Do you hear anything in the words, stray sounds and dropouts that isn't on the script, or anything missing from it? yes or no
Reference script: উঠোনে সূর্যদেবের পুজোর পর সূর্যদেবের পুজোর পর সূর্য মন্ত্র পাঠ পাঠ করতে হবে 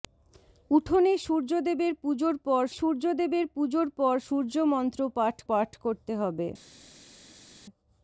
no